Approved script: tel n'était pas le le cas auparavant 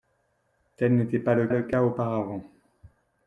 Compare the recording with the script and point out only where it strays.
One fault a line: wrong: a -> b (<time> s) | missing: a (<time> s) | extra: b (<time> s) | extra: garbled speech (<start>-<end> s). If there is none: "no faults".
no faults